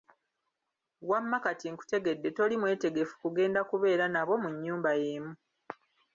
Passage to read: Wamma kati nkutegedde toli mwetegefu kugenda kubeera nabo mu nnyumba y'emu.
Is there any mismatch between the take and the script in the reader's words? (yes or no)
no